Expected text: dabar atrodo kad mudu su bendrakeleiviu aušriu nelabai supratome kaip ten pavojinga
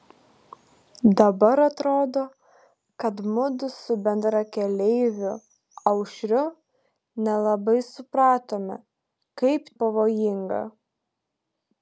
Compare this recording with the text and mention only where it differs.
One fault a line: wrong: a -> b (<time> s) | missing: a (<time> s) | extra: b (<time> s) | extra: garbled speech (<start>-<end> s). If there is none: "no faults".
missing: ten (9.6 s)